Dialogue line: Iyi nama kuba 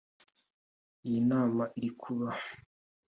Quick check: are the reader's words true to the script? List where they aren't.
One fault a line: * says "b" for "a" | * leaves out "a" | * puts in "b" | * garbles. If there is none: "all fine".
* puts in "iri"